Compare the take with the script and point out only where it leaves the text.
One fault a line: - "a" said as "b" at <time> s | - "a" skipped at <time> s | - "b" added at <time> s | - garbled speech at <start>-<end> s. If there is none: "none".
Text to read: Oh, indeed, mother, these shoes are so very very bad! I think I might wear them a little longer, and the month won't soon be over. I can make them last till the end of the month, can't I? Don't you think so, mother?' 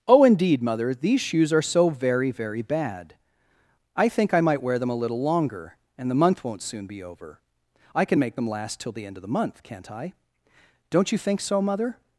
none